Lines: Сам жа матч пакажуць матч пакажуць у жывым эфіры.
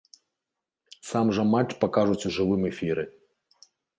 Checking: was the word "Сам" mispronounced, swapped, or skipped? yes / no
no